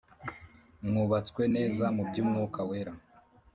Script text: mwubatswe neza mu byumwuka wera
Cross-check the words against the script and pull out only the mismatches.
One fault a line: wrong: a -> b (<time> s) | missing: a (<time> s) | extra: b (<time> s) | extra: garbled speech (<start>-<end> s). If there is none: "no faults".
no faults